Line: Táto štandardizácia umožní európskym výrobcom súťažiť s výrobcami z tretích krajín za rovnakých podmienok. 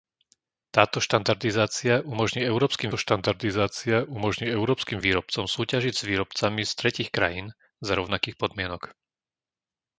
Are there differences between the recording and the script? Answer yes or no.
yes